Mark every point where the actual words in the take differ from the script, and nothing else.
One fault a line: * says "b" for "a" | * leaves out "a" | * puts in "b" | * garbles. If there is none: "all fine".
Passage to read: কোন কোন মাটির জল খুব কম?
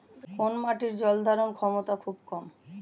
* leaves out "কোন"
* puts in "ধারণ ক্ষমতা"